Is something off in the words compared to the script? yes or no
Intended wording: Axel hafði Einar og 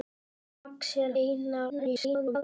yes